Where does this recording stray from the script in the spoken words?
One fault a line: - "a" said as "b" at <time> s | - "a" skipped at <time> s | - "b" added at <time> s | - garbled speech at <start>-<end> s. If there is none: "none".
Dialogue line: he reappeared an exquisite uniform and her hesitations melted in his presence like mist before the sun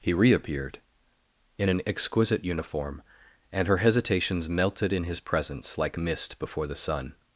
- "in" added at 1.6 s